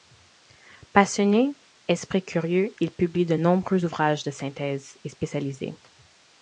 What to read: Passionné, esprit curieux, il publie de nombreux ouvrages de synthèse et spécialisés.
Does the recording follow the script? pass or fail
pass